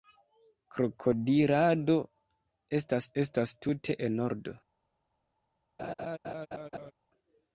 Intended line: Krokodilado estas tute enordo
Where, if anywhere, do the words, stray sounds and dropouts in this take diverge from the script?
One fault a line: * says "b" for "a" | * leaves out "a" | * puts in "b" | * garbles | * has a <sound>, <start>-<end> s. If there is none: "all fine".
* puts in "estas"
* has a laugh, 5.8-6.9 s